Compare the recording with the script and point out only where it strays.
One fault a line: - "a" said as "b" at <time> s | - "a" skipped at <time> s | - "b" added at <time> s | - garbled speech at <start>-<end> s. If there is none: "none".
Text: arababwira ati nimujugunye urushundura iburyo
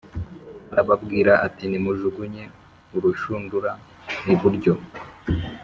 none